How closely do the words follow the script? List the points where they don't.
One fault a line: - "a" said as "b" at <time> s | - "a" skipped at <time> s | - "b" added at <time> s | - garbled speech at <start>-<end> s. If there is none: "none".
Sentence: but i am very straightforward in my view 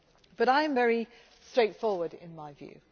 none